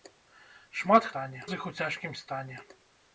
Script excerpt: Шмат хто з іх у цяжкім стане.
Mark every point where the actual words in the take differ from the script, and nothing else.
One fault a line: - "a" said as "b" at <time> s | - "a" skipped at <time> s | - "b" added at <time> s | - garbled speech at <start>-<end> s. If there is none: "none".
- "хто" said as "стане" at 1.1 s